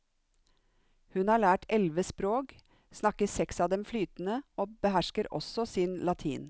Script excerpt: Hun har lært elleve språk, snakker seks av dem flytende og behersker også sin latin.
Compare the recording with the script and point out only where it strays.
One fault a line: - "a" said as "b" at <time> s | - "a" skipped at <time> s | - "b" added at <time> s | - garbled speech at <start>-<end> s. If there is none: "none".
none